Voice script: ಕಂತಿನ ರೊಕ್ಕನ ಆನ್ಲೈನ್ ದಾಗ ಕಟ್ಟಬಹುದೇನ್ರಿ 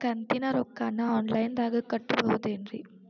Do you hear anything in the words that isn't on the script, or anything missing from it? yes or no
no